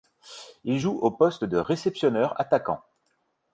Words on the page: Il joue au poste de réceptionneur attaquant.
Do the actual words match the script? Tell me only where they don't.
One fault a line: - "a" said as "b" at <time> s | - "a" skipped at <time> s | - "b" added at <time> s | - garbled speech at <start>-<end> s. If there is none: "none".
none